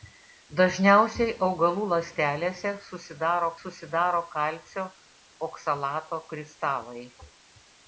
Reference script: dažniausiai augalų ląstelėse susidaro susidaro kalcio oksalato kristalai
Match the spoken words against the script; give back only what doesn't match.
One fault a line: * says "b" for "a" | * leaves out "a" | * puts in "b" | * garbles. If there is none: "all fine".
all fine